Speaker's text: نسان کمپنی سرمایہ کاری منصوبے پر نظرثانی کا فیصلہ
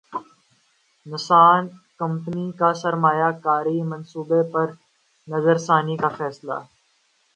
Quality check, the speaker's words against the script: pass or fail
fail